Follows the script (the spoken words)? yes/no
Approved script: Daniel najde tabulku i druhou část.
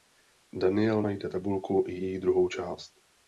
no